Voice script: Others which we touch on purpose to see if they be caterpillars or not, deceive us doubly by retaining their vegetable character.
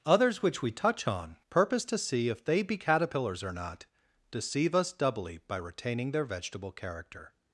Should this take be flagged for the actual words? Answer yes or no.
no